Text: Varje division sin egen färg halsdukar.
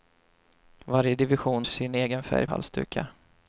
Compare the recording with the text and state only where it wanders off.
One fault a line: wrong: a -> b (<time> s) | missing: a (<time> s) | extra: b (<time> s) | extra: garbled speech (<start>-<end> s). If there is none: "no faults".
no faults